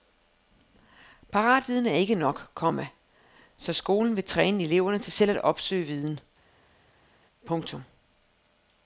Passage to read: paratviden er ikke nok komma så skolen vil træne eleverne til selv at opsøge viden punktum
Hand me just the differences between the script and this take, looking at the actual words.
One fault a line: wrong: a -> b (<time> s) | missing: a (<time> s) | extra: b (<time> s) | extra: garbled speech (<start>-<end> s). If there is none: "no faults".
no faults